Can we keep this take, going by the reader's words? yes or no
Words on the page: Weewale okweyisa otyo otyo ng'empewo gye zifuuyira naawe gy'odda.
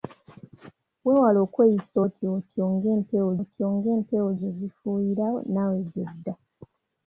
no